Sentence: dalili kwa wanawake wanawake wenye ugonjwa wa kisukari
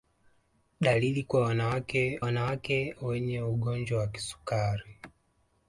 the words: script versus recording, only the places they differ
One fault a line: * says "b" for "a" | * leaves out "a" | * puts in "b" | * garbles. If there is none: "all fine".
all fine